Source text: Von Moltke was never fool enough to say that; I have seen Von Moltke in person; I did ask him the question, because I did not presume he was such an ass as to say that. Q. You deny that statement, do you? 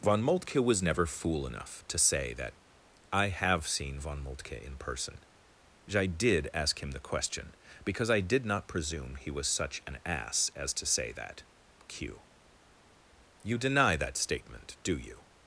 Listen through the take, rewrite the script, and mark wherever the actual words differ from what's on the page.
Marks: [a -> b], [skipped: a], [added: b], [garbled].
Von Moltke was never fool enough to say that; I have seen Von Moltke in person; I did ask him the question, because I did not presume he was such an ass as to say that. Q. You deny that statement, do you?